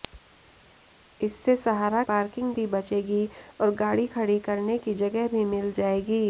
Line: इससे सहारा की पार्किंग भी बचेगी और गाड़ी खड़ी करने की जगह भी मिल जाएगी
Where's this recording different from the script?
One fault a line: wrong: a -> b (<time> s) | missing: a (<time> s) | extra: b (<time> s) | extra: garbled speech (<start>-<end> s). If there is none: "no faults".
missing: की (2.0 s)